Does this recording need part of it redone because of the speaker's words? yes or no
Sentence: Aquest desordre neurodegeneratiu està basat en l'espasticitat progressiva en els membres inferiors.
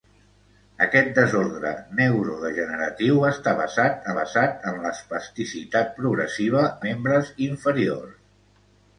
yes